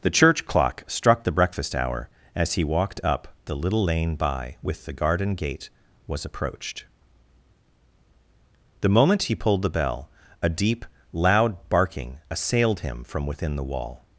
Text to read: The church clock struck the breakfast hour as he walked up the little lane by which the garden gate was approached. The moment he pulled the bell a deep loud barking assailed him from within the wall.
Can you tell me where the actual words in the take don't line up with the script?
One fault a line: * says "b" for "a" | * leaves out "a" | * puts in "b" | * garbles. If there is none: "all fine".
* says "with" for "which"